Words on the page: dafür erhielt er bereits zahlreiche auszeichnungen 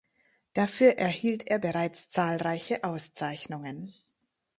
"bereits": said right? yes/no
yes